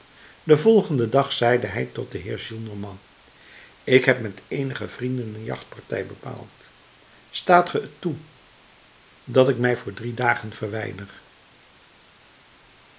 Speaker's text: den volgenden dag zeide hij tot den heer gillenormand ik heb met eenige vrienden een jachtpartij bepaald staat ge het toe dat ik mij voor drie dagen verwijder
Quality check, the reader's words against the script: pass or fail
pass